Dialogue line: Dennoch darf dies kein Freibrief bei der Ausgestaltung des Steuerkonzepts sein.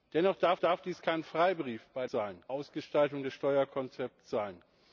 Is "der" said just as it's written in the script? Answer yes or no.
no